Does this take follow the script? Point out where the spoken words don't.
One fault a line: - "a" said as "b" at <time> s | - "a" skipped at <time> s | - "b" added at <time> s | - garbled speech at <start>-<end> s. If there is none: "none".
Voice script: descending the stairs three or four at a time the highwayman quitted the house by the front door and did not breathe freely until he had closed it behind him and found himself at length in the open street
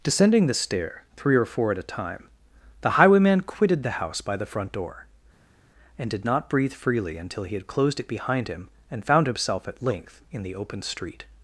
- "stairs" said as "stair" at 0.5 s